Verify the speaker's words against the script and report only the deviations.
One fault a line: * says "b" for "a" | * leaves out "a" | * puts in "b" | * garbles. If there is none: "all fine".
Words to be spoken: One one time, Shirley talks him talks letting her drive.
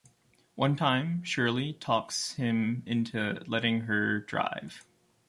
* leaves out "one"
* says "into" for "talks"